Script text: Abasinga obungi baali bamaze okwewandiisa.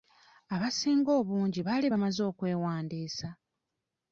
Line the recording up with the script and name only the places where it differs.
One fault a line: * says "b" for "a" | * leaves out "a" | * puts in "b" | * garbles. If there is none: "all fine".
all fine